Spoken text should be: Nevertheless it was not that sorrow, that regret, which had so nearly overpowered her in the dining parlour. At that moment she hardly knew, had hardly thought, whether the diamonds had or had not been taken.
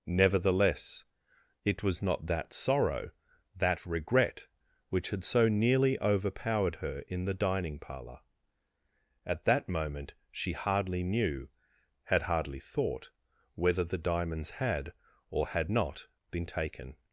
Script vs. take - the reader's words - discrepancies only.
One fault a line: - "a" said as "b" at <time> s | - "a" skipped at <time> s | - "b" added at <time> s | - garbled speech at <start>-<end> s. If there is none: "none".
none